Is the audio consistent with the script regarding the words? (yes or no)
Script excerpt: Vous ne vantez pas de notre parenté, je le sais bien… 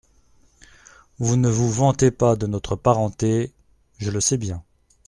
no